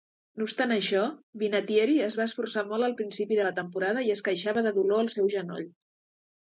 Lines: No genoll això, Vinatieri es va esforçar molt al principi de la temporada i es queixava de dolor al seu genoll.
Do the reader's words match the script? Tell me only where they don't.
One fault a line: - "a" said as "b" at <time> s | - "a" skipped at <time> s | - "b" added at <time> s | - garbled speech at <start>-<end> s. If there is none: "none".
- "genoll" said as "obstant" at 0.5 s